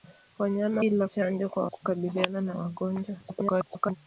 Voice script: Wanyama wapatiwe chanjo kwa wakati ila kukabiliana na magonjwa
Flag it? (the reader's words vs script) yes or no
yes